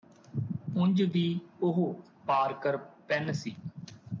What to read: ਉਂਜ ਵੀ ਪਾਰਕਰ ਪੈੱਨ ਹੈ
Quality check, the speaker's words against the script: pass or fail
fail